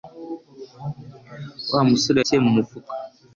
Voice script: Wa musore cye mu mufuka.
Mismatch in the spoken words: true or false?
false